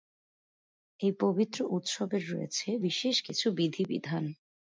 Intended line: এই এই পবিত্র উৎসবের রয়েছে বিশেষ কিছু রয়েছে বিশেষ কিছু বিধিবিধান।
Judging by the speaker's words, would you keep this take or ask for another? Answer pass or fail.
fail